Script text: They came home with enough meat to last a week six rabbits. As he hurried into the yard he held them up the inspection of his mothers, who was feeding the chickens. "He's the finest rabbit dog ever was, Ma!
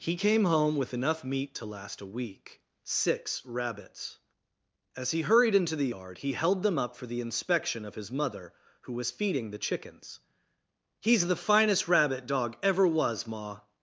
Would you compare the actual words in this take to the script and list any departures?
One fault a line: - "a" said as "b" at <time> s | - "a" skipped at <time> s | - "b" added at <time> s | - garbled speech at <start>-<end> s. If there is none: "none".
- "They" said as "He" at 0.0 s
- "for" added at 6.9 s
- "mothers" said as "mother" at 8.1 s